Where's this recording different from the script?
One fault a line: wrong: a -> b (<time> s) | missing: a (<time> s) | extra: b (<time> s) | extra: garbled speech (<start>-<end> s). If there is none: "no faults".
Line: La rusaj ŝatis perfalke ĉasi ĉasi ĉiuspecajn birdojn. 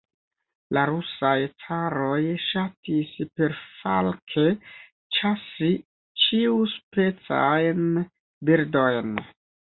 extra: caroj (1.6 s)
missing: ĉasi (5.7 s)